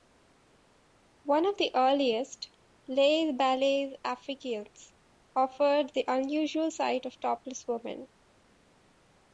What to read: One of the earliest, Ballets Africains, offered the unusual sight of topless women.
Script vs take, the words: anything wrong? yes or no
yes